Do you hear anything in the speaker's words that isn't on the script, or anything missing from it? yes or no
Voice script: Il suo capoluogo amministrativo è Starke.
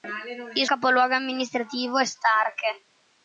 yes